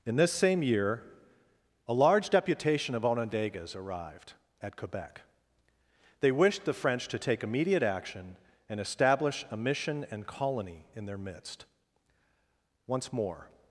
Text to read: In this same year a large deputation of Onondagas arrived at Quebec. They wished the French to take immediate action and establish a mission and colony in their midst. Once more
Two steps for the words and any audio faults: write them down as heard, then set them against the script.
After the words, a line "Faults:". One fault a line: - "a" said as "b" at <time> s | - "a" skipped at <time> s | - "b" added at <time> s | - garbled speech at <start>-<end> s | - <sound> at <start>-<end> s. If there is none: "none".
In this same year a large deputation of Onondagas arrived at Quebec. They wished the French to take immediate action and establish a mission and colony in their midst. Once more
Faults:
none